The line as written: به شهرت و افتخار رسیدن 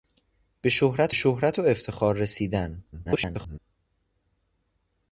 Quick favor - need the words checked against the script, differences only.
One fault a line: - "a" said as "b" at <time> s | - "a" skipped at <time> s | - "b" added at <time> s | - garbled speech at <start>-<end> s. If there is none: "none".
- "شهرت" added at 1.1 s
- garbled speech at 2.9-3.6 s